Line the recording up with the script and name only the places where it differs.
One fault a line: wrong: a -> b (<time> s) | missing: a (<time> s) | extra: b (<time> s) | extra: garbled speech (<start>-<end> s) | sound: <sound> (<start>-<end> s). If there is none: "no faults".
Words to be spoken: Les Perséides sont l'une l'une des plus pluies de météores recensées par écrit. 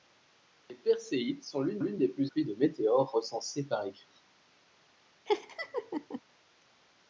sound: laugh (5.3-6.2 s)